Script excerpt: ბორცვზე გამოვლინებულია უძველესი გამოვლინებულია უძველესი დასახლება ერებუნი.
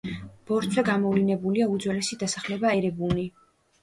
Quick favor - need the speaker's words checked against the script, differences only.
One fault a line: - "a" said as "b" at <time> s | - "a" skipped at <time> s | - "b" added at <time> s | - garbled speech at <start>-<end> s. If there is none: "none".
- "გამოვლინებულია უძველესი" skipped at 2.2 s